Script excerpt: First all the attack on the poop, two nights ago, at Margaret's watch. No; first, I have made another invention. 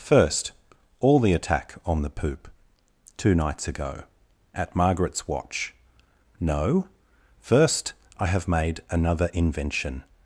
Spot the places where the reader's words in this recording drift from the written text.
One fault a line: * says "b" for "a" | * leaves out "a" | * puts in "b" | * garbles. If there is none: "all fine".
all fine